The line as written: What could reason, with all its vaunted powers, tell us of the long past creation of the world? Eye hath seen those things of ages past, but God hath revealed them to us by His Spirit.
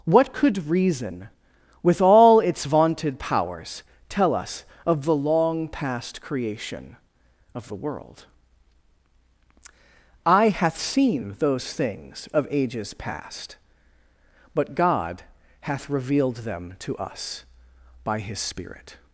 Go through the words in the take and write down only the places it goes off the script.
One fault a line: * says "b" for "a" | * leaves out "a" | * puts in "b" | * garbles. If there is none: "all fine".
all fine